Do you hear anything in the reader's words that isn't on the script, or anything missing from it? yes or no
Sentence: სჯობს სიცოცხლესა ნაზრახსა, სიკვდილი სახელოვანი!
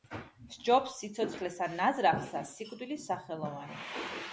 no